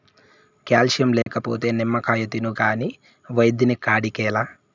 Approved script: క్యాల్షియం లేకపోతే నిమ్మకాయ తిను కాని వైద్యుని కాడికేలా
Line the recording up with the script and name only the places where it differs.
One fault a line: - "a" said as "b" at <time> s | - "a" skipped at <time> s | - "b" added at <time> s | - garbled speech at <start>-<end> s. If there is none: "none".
none